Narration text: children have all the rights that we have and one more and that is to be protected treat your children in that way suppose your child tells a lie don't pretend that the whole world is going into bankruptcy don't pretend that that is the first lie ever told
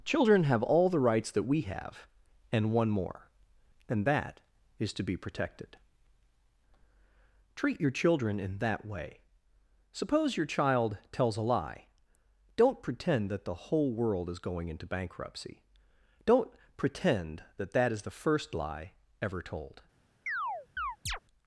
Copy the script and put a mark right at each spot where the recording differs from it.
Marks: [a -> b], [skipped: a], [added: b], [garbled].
children have all the rights that we have and one more and that is to be protected treat your children in that way suppose your child tells a lie don't pretend that the whole world is going into bankruptcy don't pretend that that is the first lie ever told